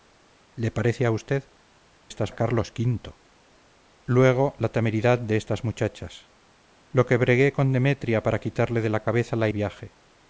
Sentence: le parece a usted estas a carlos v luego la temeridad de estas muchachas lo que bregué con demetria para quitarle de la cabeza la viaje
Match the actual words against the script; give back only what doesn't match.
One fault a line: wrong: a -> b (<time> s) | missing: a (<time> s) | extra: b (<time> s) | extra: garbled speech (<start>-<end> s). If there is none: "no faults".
no faults